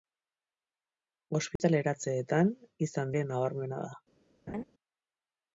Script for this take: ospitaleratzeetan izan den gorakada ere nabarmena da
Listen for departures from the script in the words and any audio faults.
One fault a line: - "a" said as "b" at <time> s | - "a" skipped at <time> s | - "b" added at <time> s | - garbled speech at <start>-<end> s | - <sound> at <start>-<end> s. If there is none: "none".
- dropout at 1.6-1.6 s
- "den gorakada" skipped at 3.1 s
- laugh at 4.5-4.6 s